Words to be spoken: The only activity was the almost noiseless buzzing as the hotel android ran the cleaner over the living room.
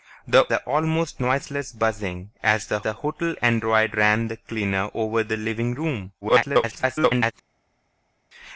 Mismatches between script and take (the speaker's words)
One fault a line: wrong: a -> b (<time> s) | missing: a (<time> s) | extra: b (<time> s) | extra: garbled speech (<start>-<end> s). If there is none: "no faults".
missing: only activity was (0.5 s)
extra: the (2.8 s)
extra: garbled speech (6.2-7.3 s)